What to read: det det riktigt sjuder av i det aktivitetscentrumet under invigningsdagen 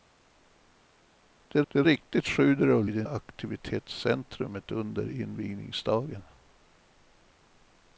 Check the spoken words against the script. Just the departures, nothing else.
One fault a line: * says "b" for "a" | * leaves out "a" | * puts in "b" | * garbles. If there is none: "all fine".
all fine